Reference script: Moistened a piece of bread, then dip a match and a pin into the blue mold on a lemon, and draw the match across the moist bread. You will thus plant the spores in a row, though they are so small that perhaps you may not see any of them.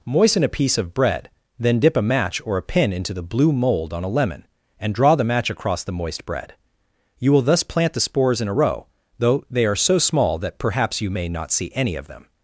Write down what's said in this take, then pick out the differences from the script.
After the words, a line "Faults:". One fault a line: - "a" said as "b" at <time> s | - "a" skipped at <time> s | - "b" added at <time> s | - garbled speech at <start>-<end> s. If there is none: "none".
Moisten a piece of bread, then dip a match or a pin into the blue mold on a lemon, and draw the match across the moist bread. You will thus plant the spores in a row, though they are so small that perhaps you may not see any of them.
Faults:
- "Moistened" said as "Moisten" at 0.1 s
- "and" said as "or" at 2.4 s